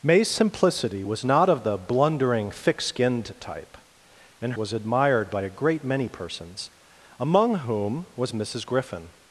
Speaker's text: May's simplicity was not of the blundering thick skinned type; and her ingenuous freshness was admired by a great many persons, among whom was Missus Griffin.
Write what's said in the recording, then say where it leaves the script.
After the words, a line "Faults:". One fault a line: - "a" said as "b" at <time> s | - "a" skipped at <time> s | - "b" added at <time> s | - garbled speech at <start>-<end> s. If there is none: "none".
May's simplicity was not of the blundering thick skinned type; and was admired by a great many persons, among whom was Missus Griffin.
Faults:
- "her ingenuous freshness" skipped at 4.5 s